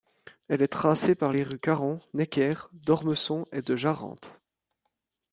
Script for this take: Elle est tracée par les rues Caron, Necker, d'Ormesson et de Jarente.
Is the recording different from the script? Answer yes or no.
no